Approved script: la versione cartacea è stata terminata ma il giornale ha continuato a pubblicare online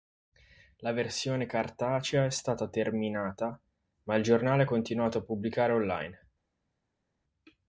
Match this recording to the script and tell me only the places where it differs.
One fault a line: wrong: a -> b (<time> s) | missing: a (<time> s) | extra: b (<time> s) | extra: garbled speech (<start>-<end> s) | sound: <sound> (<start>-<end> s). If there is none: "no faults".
no faults